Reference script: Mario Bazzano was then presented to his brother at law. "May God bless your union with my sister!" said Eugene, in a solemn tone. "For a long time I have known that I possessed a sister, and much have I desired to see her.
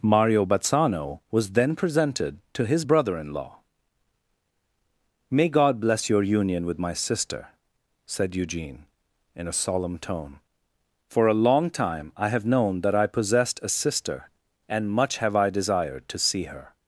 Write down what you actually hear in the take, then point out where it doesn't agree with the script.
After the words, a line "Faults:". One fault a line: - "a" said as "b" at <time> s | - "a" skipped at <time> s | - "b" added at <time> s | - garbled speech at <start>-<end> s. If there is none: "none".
Mario Bazzano was then presented to his brother in law. "May God bless your union with my sister!" said Eugene, in a solemn tone. "For a long time I have known that I possessed a sister, and much have I desired to see her.
Faults:
- "at" said as "in" at 3.2 s